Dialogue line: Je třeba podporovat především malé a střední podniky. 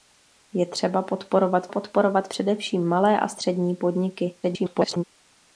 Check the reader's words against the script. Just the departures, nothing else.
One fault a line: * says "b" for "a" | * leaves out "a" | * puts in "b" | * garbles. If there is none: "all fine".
* puts in "podporovat"
* garbles